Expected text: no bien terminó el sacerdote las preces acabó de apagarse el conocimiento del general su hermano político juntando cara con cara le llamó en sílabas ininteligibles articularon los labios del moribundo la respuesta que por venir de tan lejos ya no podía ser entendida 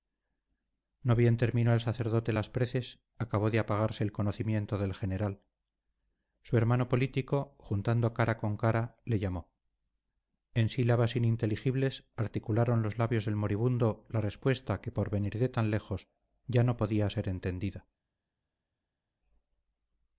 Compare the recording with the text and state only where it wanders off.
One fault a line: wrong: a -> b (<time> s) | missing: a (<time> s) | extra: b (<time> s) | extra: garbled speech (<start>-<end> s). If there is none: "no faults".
no faults